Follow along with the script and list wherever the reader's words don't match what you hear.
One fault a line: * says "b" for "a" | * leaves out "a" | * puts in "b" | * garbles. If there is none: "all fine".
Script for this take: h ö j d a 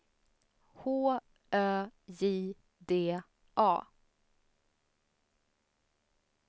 all fine